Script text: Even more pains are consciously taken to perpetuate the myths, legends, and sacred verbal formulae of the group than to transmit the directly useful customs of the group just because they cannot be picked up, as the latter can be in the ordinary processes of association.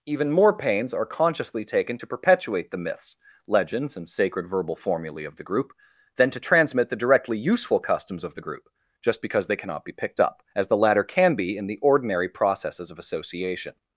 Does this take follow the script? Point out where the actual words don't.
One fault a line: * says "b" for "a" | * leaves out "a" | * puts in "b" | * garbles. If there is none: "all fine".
all fine